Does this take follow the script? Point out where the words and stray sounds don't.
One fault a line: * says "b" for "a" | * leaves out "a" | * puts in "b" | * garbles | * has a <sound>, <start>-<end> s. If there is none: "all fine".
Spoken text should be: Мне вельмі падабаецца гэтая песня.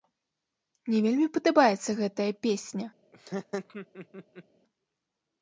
* has a laugh, 3.1-4.4 s